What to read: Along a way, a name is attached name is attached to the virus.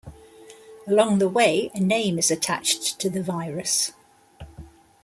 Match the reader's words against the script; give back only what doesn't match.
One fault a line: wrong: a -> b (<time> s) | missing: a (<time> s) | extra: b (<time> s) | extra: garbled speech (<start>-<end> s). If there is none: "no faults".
wrong: a -> the (1.2 s)
missing: name is attached (3.0 s)